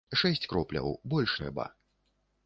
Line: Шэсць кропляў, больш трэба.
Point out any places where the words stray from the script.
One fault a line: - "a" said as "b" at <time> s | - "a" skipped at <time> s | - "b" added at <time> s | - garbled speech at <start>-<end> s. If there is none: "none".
none